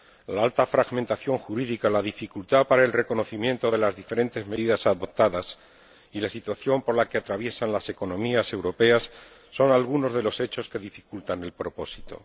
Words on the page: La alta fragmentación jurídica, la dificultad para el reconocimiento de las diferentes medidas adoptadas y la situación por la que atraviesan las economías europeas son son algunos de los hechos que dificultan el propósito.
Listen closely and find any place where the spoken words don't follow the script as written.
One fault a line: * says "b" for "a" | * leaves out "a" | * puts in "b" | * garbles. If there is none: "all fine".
* leaves out "son"